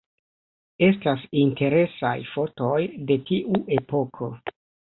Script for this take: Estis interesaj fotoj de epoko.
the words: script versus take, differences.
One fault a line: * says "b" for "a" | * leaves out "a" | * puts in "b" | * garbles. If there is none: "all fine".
* says "Estas" for "Estis"
* puts in "tiu"